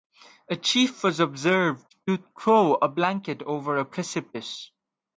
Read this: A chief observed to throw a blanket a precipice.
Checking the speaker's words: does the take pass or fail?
fail